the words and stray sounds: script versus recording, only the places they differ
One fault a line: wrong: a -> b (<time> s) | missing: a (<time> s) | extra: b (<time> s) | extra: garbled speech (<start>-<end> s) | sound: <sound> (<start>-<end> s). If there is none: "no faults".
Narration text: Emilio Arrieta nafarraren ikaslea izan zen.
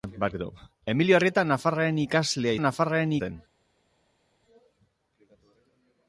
wrong: izan -> nafarraren (2.6 s)